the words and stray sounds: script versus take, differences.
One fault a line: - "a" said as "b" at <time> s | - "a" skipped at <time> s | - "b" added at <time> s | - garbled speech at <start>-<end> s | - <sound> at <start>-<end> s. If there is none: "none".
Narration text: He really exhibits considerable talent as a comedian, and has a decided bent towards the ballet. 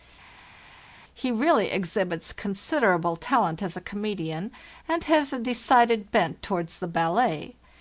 none